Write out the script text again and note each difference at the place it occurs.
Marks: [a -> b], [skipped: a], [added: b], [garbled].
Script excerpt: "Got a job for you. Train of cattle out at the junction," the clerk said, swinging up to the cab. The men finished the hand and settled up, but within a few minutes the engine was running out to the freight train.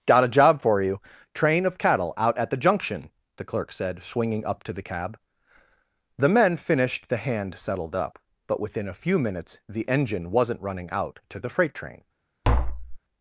"Got a job for you. Train of cattle out at the junction," the clerk said, swinging up to the cab. The men finished the hand [skipped: and] settled up, but within a few minutes the engine [was -> wasn't] running out to the freight train.